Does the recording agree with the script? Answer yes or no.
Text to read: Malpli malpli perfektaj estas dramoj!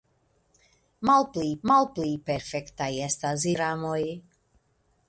yes